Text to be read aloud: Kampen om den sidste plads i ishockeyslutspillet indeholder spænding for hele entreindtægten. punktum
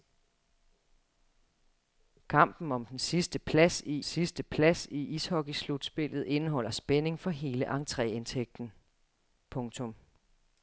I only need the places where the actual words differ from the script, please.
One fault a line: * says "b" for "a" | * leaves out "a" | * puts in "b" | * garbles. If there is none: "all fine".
* puts in "sidste plads i"